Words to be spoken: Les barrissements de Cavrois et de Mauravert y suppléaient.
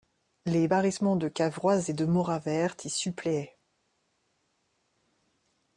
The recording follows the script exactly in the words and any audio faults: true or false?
true